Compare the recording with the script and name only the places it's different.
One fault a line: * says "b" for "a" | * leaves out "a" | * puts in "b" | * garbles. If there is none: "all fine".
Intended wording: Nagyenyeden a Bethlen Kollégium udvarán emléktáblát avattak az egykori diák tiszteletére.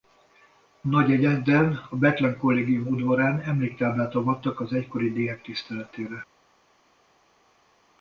all fine